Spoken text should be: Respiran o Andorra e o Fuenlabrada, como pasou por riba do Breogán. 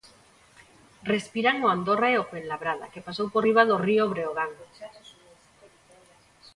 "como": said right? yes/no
no